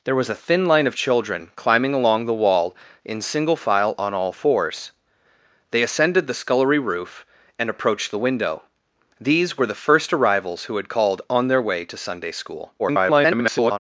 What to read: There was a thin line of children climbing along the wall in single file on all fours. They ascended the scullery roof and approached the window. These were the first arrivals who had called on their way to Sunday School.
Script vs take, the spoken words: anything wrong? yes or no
yes